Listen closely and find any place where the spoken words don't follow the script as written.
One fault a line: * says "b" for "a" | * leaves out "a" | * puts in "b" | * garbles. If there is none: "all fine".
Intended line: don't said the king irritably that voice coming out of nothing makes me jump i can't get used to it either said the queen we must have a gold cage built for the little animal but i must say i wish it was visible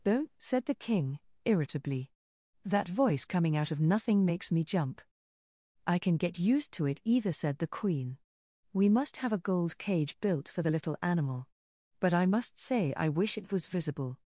* says "can" for "can't"